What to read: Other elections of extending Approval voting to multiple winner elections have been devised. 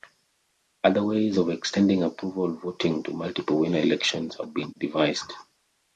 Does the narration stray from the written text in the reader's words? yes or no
yes